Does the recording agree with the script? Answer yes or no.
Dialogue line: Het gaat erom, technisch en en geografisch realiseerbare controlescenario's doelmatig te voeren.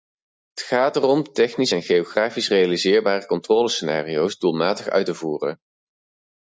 no